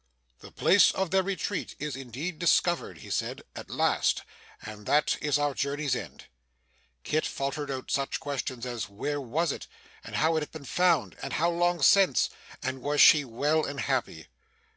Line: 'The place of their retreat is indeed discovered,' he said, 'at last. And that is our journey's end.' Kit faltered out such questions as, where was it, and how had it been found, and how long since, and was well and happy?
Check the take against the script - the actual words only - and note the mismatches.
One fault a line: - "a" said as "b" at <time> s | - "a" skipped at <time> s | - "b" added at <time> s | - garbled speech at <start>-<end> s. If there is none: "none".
- "she" added at 13.0 s